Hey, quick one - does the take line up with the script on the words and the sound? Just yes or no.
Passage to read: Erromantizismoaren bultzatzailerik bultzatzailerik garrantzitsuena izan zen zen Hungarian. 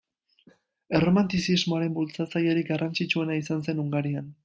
no